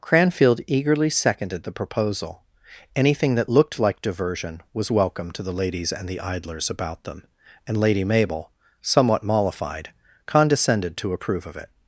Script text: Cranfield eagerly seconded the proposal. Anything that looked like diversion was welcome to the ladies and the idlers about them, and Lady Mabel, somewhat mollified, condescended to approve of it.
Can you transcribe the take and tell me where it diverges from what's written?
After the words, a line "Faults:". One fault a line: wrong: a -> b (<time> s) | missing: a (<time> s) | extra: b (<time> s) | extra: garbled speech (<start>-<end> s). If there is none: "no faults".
Cranfield eagerly seconded the proposal. Anything that looked like diversion was welcome to the ladies and the idlers about them, and Lady Mabel, somewhat mollified, condescended to approve of it.
Faults:
no faults